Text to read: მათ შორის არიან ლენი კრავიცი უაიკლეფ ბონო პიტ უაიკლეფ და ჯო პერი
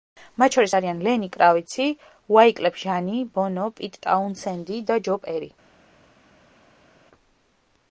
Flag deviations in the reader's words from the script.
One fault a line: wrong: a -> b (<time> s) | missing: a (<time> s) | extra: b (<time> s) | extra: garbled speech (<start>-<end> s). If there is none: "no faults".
extra: ჟანი (2.8 s)
wrong: უაიკლეფ -> ტაუნსენდი (4.1 s)